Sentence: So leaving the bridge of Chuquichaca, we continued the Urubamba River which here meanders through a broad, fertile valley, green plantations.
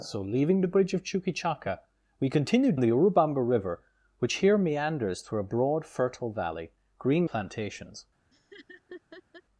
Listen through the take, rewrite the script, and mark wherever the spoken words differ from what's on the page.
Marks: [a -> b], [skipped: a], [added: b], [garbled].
So leaving the bridge of Chuquichaca, we continued the Urubamba River which here meanders through a broad, fertile valley, green plantations.